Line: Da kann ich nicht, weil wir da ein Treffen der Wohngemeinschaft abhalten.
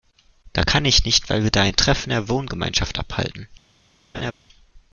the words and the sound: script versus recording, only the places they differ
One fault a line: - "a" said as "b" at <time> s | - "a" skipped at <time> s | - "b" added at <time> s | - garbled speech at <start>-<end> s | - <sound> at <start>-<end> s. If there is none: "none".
- laugh at 4.1-4.3 s